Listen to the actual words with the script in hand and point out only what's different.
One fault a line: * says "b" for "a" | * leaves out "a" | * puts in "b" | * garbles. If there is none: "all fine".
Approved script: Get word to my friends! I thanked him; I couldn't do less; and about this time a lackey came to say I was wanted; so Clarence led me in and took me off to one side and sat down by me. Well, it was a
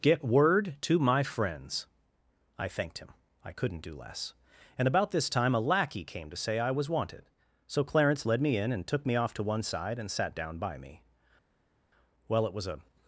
all fine